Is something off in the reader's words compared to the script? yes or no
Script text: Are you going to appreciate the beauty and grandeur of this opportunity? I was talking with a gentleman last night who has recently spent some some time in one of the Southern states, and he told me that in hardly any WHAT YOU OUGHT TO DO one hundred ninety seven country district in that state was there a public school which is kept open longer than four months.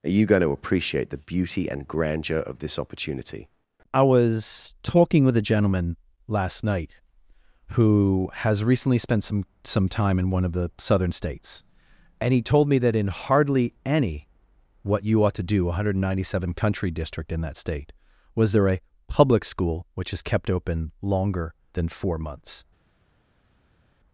no